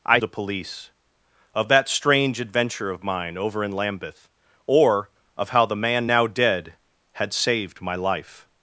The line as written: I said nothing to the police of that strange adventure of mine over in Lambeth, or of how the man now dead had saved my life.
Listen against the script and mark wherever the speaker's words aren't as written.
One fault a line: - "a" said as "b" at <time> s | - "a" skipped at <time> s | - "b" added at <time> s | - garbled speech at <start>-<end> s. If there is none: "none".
- "said nothing to" skipped at 0.2 s